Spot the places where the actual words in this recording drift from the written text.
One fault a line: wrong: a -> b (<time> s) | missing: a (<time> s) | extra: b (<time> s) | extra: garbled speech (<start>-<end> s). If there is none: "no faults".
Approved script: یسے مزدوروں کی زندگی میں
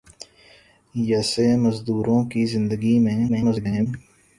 extra: garbled speech (3.3-3.9 s)